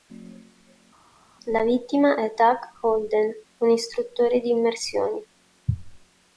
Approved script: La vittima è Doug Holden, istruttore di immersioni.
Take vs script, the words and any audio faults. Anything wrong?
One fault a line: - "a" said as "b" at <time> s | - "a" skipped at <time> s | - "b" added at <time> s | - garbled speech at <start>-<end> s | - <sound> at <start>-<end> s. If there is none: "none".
- "un" added at 3.6 s